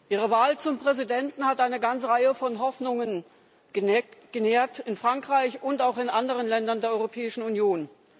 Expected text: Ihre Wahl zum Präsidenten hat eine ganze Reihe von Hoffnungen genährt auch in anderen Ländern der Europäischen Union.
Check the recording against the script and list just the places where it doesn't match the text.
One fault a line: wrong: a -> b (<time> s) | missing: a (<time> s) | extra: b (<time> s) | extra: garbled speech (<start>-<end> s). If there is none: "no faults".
extra: in Frankreich und (4.8 s)